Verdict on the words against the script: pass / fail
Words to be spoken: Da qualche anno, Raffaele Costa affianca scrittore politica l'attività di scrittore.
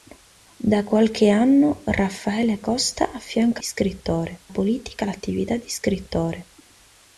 pass